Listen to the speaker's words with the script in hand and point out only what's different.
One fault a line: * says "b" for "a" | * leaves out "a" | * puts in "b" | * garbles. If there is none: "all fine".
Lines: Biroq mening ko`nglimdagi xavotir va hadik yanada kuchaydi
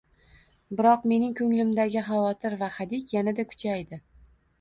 all fine